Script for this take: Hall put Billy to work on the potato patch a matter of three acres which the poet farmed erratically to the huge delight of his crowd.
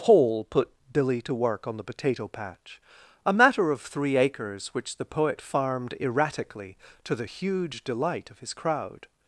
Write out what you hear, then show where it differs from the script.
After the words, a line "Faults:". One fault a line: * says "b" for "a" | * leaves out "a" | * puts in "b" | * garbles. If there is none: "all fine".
Paul put Billy to work on the potato patch a matter of three acres which the poet farmed erratically to the huge delight of his crowd.
Faults:
* says "Paul" for "Hall"